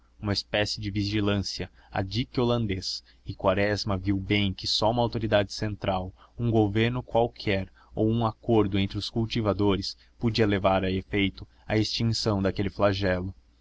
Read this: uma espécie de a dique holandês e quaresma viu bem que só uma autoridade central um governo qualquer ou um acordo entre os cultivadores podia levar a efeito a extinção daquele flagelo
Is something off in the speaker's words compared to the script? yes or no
yes